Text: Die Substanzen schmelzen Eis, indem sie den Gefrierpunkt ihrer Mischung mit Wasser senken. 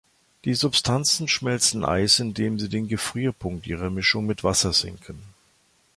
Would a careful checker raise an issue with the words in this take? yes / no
no